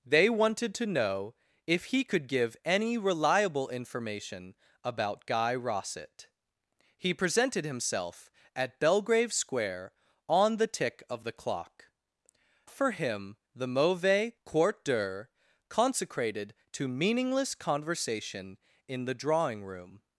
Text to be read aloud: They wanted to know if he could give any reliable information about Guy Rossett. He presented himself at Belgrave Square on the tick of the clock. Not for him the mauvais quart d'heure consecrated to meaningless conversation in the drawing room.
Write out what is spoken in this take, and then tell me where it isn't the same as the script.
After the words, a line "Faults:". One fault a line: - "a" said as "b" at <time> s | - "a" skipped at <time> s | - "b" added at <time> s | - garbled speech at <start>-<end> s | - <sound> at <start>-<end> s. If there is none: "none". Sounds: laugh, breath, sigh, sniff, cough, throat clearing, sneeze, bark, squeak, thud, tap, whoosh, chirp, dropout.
They wanted to know if he could give any reliable information about Guy Rossett. He presented himself at Belgrave Square on the tick of the clock. For him the mauvais quart d'heure consecrated to meaningless conversation in the drawing room.
Faults:
- "Not" skipped at 11.9 s